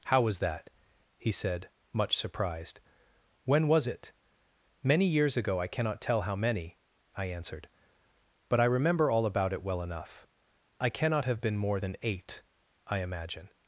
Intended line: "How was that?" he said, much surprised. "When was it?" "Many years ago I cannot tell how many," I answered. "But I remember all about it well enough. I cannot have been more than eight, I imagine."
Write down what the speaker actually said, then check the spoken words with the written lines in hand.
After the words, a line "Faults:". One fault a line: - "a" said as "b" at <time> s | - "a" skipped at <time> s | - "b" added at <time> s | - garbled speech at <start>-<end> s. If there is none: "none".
"How was that?" he said, much surprised. "When was it?" "Many years ago I cannot tell how many," I answered. "But I remember all about it well enough. I cannot have been more than eight, I imagine."
Faults:
none